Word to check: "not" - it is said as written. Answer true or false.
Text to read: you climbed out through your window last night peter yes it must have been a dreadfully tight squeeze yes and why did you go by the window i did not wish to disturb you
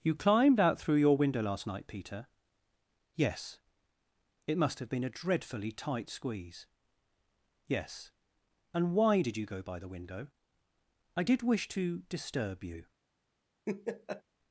false